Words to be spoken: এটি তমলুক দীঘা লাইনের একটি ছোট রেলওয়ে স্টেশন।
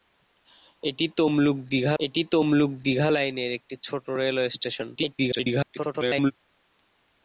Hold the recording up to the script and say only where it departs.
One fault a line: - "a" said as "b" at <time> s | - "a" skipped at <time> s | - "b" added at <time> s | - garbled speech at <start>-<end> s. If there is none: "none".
- "এটি তমলুক দীঘা" added at 2.0 s
- garbled speech at 5.0-6.3 s